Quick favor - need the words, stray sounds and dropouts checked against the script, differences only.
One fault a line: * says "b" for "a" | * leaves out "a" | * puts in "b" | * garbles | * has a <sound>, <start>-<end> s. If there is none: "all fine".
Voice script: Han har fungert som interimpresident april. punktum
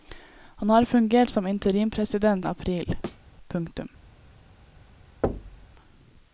* has a thud, 3.0-3.2 s
* has a thud, 5.2-5.7 s